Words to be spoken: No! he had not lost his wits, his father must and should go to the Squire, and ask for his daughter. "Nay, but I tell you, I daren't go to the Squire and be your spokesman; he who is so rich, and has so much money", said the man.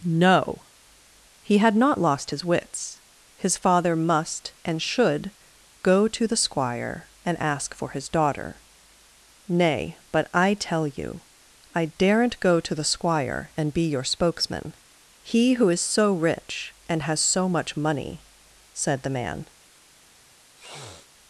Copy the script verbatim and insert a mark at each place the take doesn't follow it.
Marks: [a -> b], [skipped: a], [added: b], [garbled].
No! he had not lost his wits, his father must and should go to the Squire, and ask for his daughter. "Nay, but I tell you, I daren't go to the Squire and be your spokesman; he who is so rich, and has so much money", said the man.